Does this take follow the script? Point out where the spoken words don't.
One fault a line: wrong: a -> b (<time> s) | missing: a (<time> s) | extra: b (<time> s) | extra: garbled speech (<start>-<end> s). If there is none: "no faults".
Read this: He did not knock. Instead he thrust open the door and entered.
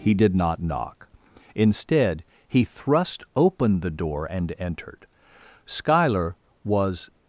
extra: Schuyler was (5.7 s)